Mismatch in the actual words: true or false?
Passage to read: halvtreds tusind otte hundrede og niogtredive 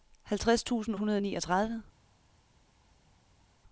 true